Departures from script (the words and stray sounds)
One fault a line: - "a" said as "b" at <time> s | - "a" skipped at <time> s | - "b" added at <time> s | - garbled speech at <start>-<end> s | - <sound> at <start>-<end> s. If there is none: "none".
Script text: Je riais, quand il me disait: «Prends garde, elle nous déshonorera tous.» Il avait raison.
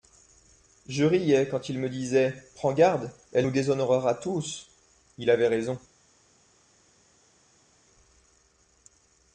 none